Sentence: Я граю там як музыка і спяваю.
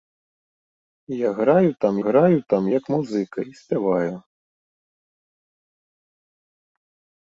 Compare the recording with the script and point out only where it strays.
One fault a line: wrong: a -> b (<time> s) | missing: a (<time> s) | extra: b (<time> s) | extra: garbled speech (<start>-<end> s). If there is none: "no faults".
extra: граю там (2.1 s)